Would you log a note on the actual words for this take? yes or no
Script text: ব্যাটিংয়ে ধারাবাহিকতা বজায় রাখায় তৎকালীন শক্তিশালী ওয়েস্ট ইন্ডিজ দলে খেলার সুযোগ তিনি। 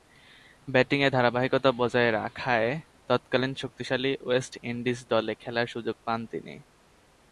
yes